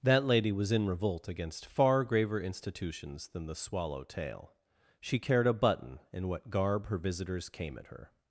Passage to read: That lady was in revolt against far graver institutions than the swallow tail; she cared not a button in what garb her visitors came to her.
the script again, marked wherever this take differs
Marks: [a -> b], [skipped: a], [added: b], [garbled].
That lady was in revolt against far graver institutions than the swallow tail; she cared [skipped: not] a button in what garb her visitors came [to -> at] her.